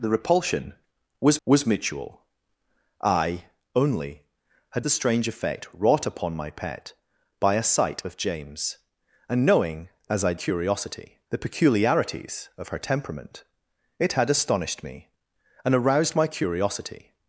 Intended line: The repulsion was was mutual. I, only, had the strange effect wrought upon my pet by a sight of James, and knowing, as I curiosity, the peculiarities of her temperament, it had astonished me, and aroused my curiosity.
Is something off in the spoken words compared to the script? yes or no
no